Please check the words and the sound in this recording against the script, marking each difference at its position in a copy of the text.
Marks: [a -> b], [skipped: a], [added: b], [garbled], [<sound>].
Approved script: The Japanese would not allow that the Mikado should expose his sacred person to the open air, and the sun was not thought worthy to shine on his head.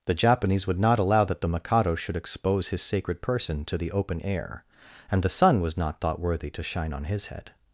The Japanese would not allow that the Mikado should expose his sacred person to the open air, and the sun was not thought worthy to shine on his head.